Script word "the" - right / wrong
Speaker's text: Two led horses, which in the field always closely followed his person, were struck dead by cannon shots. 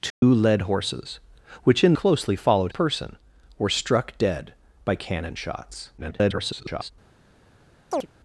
wrong